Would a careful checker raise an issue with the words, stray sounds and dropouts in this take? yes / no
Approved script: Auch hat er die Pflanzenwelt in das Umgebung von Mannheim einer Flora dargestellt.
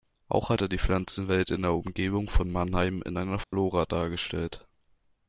yes